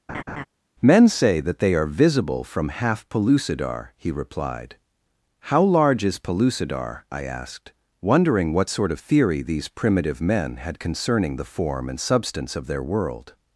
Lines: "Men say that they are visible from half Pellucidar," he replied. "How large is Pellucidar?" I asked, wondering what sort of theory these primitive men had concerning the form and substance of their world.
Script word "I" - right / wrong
right